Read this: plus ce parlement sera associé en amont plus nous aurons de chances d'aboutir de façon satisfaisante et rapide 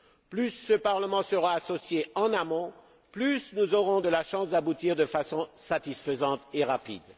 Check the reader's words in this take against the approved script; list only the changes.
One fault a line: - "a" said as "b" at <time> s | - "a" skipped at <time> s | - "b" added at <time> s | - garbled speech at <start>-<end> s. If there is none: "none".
none